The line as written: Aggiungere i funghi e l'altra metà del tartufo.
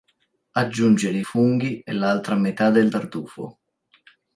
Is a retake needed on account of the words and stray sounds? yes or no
no